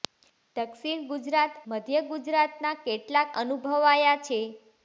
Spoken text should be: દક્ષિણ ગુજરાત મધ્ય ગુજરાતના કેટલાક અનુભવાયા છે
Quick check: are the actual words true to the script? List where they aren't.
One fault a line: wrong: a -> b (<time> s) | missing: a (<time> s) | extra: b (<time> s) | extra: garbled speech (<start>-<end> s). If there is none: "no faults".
no faults